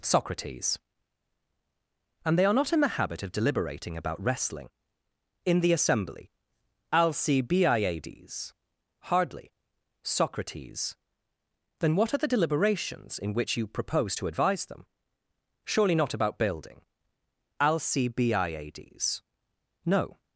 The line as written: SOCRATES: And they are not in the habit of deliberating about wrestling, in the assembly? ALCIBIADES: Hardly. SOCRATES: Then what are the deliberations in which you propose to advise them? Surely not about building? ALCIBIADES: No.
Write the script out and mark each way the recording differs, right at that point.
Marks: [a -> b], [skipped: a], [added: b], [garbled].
SOCRATES: And they are not in the habit of deliberating about wrestling, in the assembly? ALCIBIADES: Hardly. SOCRATES: Then what are the deliberations in which you propose to advise them? Surely not about building? ALCIBIADES: No.